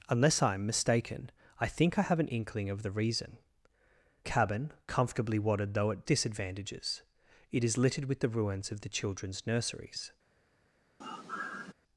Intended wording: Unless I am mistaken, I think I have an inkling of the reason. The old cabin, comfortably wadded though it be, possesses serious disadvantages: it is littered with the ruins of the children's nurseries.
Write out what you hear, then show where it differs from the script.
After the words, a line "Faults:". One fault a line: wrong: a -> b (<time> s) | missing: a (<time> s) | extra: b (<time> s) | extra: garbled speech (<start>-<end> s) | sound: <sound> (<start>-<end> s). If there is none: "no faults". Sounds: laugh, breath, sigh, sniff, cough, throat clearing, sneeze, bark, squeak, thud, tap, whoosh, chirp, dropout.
Unless I am mistaken, I think I have an inkling of the reason. Cabin, comfortably wadded though it disadvantages: it is littered with the ruins of the children's nurseries.
Faults:
missing: The old (3.4 s)
missing: be possesses serious (6.0 s)
sound: sigh (11.0-11.7 s)